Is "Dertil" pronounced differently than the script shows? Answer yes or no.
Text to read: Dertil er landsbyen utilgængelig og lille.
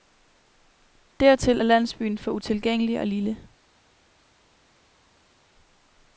no